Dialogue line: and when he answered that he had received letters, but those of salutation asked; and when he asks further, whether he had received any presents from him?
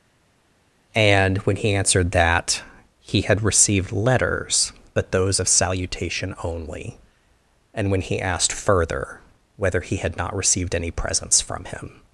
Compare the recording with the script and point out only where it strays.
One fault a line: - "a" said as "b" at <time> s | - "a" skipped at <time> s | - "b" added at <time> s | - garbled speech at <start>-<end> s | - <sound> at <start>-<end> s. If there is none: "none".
- "asked" said as "only" at 6.4 s
- "asks" said as "asked" at 8.2 s
- "not" added at 10.2 s